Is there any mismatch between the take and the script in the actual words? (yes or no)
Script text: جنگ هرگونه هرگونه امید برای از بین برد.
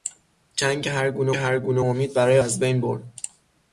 no